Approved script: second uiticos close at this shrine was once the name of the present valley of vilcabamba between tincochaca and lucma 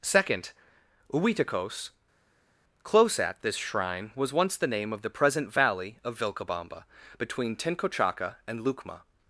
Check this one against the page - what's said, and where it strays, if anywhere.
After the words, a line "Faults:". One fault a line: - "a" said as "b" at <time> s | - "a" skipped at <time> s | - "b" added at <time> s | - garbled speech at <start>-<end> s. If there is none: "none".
second uiticos close at this shrine was once the name of the present valley of vilcabamba between tincochaca and lucma
Faults:
none